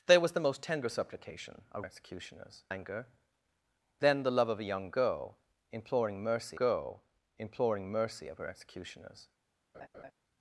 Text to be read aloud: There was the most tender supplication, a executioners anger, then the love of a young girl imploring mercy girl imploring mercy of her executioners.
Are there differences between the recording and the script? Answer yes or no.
no